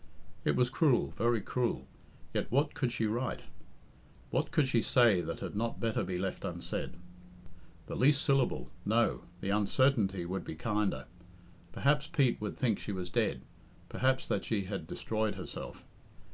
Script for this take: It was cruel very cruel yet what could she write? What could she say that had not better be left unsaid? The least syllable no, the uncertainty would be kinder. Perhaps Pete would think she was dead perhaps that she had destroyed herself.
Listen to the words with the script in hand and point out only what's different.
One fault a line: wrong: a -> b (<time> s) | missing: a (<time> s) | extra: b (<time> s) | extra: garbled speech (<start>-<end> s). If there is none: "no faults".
no faults